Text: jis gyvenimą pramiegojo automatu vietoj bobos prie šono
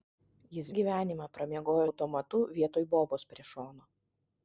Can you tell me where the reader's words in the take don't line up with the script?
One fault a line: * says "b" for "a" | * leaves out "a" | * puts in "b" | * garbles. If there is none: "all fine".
all fine